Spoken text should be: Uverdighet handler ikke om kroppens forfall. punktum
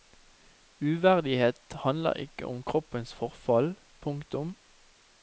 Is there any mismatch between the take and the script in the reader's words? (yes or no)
no